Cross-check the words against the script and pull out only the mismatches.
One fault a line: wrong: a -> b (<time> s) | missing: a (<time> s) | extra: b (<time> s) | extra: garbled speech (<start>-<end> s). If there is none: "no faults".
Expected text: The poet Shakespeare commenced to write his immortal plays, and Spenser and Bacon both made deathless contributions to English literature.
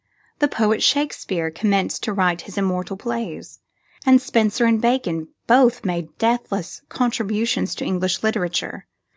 no faults